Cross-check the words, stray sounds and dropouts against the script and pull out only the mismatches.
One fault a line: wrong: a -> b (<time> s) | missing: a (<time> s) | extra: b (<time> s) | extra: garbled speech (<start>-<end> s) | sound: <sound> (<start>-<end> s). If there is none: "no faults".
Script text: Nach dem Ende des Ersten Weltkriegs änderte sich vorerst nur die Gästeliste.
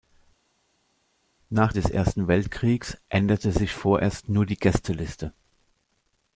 missing: dem Ende (1.7 s)